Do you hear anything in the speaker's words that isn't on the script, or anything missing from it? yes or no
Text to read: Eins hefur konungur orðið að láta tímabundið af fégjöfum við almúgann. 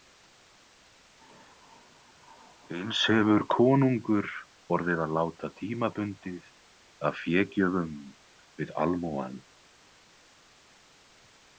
no